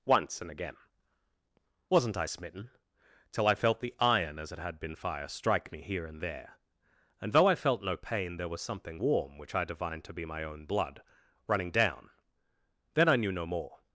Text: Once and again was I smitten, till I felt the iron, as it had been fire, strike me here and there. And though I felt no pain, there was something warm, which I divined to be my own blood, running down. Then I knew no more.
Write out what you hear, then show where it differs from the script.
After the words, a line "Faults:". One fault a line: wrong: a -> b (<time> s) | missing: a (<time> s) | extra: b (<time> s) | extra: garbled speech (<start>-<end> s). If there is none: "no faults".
Once and again wasn't I smitten, till I felt the iron, as it had been fire, strike me here and there. And though I felt no pain, there was something warm, which I divined to be my own blood, running down. Then I knew no more.
Faults:
wrong: was -> wasn't (1.9 s)